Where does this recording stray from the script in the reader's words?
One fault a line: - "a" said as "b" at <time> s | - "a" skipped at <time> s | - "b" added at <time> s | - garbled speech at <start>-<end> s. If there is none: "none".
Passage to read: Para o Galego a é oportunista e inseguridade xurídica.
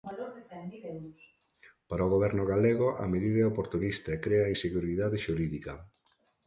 - "Goberno" added at 2.1 s
- "medida" added at 3.1 s
- "crea" added at 4.2 s